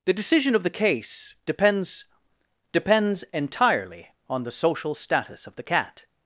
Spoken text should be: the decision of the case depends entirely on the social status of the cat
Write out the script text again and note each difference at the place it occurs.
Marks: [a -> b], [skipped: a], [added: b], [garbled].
the decision of the case depends [added: depends] entirely on the social status of the cat